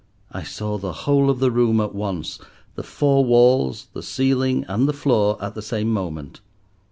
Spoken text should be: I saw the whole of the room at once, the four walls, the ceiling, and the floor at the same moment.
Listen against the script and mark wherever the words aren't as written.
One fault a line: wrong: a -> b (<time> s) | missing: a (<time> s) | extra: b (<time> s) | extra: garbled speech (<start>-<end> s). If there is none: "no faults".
no faults